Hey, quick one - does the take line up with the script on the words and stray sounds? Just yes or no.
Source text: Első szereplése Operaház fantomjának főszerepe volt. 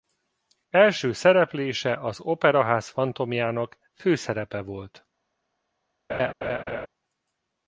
no